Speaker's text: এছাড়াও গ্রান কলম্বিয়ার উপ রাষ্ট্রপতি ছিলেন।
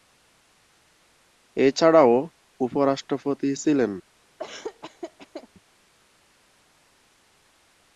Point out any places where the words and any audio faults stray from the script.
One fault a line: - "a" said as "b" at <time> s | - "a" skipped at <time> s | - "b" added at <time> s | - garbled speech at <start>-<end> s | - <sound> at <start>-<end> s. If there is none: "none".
- "গ্রান কলম্বিয়ার" skipped at 2.1 s
- laugh at 4.4-5.5 s